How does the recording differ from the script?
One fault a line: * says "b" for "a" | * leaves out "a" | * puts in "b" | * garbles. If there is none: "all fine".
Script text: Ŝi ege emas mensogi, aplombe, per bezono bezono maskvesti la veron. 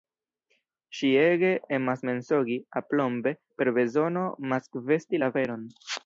* leaves out "bezono"